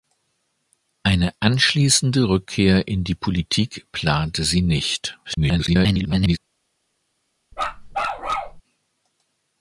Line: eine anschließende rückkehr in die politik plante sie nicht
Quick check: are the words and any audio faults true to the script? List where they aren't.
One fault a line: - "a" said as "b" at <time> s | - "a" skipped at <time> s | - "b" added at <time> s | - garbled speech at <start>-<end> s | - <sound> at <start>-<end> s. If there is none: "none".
- garbled speech at 5.2-6.4 s
- bark at 7.5-8.6 s